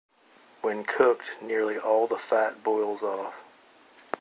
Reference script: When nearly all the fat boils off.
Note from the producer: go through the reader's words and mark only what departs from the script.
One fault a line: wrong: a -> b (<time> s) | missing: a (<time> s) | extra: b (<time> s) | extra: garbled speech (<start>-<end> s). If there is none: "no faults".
extra: cooked (0.8 s)